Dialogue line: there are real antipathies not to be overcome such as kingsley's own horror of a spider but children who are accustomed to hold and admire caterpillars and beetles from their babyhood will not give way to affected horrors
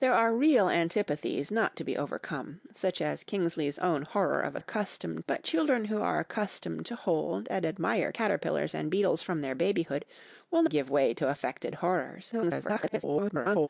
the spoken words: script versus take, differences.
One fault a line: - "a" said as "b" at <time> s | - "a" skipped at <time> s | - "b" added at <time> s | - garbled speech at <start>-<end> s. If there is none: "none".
- "spider" said as "accustomed" at 4.6 s
- "not" skipped at 10.6 s
- garbled speech at 12.3-13.7 s